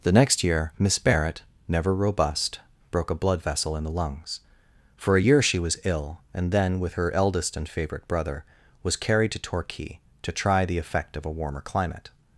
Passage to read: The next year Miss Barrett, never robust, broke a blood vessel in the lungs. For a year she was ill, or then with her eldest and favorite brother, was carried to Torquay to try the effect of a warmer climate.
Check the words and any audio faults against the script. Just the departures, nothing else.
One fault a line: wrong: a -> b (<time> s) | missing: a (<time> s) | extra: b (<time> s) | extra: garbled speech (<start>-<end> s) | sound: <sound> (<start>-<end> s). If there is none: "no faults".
wrong: or -> and (6.3 s)